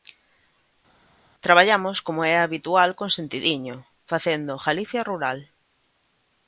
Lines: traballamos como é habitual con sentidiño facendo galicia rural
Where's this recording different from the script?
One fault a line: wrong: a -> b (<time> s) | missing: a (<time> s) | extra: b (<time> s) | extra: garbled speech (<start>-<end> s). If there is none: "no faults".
no faults